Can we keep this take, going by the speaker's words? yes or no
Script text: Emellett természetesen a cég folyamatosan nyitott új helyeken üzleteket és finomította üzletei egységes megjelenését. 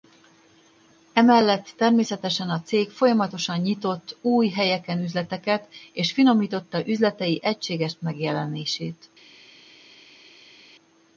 yes